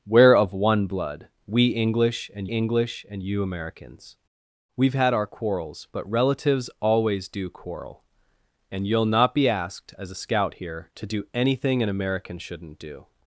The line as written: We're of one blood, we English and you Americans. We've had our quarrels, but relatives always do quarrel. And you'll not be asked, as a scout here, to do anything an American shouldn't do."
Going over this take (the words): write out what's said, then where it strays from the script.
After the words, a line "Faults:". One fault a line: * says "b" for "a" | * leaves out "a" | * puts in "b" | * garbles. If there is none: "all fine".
We're of one blood, we English and English and you Americans. We've had our quarrels, but relatives always do quarrel. And you'll not be asked, as a scout here, to do anything an American shouldn't do."
Faults:
* puts in "English and"